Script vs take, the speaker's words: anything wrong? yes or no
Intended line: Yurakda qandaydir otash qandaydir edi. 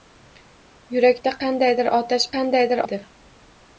no